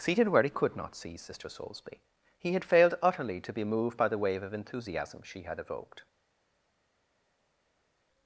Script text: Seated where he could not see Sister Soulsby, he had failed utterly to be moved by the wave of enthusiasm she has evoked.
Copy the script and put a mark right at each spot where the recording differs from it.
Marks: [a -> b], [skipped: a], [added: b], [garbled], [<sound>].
Seated where he could not see Sister Soulsby, he had failed utterly to be moved by the wave of enthusiasm she [has -> had] evoked.